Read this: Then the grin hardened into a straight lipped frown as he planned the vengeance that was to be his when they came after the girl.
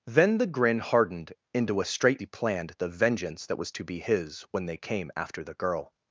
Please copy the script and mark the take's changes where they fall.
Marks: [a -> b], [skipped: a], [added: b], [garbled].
Then the grin hardened into a straight [skipped: lipped frown as] he planned the vengeance that was to be his when they came after the girl.